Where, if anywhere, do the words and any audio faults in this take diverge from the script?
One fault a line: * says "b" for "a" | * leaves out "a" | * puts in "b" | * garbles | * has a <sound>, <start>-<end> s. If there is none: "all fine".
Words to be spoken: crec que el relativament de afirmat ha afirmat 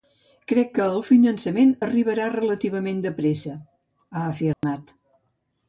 * puts in "finançament arribarà"
* says "pressa" for "afirmat"
* has a dropout, 4.5-4.6 s